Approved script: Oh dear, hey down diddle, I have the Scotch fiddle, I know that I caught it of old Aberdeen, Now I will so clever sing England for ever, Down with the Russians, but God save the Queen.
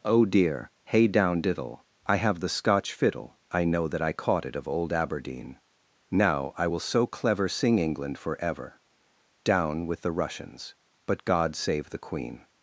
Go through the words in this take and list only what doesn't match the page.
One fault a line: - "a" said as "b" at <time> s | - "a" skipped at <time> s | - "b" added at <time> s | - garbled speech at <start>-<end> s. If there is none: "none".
none